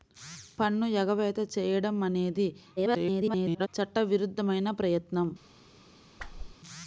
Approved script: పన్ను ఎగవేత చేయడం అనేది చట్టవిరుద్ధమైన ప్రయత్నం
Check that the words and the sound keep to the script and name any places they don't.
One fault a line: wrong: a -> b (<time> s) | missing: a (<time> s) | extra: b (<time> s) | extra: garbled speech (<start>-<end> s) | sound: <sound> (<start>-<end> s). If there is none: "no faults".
extra: garbled speech (2.8-3.7 s)
sound: whoosh (6.2-6.6 s)